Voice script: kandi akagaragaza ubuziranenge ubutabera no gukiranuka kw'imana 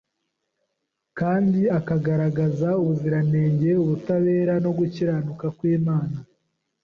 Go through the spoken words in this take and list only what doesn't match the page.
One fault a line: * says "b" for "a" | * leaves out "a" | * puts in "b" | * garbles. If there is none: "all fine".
all fine